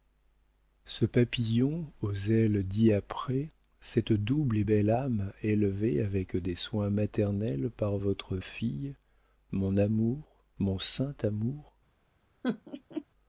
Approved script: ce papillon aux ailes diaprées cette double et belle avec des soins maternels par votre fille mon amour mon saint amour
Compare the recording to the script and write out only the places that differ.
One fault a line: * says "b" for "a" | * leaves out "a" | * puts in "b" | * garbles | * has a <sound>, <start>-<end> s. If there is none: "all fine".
* puts in "âme élevée"
* has a laugh, 12.4-13.0 s